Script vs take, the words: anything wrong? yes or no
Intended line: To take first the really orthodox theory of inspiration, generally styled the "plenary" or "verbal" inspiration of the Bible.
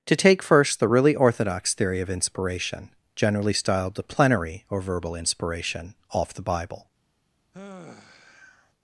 yes